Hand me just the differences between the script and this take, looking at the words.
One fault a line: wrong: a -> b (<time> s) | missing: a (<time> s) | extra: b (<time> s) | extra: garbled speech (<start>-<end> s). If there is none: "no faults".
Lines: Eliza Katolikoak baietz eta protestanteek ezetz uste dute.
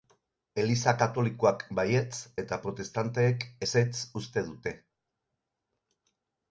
no faults